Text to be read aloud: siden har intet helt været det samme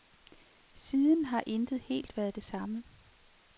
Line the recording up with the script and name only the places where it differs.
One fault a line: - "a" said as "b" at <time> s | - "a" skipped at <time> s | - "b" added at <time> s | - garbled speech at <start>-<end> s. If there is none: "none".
none